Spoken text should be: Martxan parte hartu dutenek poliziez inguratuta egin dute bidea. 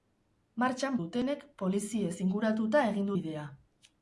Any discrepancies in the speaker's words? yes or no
yes